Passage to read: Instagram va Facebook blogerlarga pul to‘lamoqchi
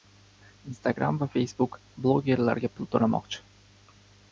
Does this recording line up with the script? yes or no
yes